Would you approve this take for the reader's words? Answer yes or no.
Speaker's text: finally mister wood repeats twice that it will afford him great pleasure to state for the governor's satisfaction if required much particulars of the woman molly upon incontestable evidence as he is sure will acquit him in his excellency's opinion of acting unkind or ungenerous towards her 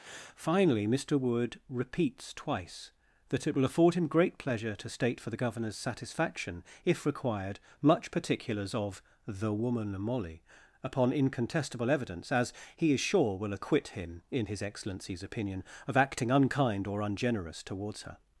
yes